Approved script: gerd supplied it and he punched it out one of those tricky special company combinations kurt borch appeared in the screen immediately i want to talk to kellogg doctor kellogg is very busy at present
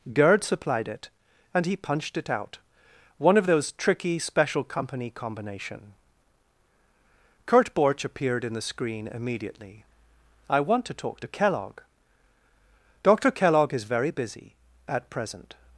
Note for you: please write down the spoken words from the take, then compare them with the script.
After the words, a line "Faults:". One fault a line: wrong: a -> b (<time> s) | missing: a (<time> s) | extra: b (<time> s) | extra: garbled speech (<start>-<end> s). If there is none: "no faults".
gerd supplied it and he punched it out one of those tricky special company combination kurt borch appeared in the screen immediately i want to talk to kellogg doctor kellogg is very busy at present
Faults:
wrong: combinations -> combination (5.1 s)